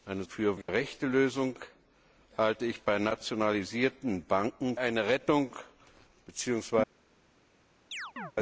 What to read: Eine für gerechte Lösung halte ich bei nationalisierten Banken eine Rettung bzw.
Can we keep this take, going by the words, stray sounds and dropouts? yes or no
no